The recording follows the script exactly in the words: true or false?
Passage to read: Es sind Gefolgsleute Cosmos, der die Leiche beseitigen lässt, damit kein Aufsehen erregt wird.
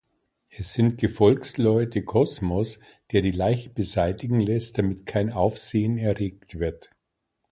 true